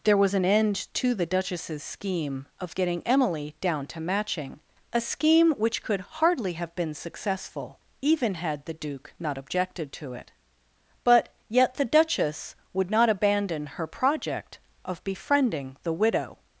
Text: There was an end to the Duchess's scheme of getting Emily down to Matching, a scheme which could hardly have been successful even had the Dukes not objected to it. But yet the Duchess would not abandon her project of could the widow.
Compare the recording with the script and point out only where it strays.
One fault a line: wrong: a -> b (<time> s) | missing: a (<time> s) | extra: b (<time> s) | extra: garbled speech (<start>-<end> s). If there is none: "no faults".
wrong: Dukes -> Duke (8.7 s)
wrong: could -> befriending (15.0 s)